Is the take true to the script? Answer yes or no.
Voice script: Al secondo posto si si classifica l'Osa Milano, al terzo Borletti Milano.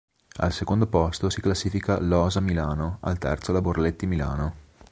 no